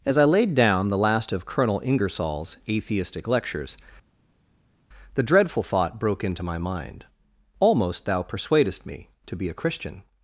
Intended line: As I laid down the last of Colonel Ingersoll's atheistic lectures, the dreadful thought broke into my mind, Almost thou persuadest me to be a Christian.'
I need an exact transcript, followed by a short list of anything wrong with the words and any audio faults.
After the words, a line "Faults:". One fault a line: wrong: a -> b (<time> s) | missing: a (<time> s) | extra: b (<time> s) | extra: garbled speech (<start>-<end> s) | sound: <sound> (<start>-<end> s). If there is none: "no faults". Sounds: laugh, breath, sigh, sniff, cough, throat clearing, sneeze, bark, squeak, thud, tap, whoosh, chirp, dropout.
As I laid down the last of Colonel Ingersoll's atheistic lectures, the dreadful thought broke into my mind, Almost thou persuadest me to be a Christian.'
Faults:
no faults